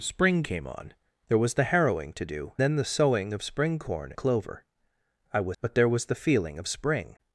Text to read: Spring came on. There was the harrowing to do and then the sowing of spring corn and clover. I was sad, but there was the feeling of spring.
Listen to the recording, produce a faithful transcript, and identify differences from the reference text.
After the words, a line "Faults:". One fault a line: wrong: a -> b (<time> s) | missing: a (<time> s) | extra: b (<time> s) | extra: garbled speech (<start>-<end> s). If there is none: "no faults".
Spring came on. There was the harrowing to do then the sowing of spring corn clover. I was but there was the feeling of spring.
Faults:
missing: and (2.5 s)
missing: and (4.1 s)
missing: sad (5.6 s)